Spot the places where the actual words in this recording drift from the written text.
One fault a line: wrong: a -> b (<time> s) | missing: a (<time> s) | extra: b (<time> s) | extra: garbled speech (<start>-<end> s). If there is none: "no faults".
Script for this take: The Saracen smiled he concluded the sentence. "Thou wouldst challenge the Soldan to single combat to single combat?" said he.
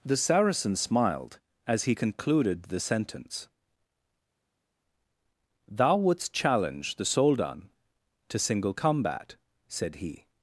extra: as (1.7 s)
missing: to single combat (9.3 s)